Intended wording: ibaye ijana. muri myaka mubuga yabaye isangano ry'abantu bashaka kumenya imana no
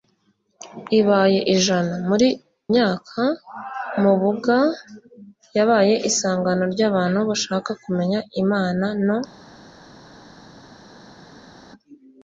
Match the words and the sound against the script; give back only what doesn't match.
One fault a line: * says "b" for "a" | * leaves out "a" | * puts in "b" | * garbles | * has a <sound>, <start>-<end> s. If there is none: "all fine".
all fine